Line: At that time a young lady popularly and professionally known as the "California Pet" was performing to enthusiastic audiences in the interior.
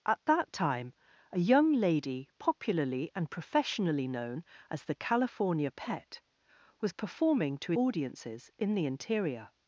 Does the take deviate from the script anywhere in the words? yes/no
yes